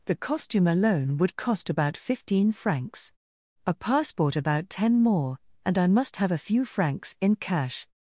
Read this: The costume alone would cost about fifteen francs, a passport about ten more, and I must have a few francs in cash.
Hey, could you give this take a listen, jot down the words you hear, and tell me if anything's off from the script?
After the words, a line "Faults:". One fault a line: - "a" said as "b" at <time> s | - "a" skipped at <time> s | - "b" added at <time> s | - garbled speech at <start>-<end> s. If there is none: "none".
The costume alone would cost about fifteen francs, a passport about ten more, and I must have a few francs in cash.
Faults:
none